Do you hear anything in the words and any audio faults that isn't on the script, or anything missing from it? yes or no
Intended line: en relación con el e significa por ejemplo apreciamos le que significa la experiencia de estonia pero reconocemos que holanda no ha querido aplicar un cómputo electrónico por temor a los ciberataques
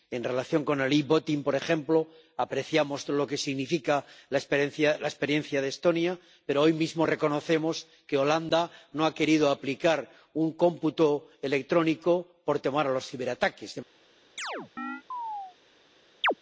yes